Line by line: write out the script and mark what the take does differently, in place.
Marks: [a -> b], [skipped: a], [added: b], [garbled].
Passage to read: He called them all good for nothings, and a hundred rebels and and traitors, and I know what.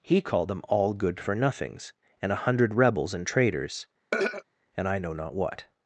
He called them all good for nothings, and a hundred rebels and [skipped: and] traitors, and I know [added: not] what.